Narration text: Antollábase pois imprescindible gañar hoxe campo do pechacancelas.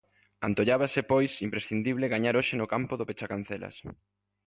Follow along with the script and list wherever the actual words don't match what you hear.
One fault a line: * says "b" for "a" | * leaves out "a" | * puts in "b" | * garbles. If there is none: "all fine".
* puts in "no"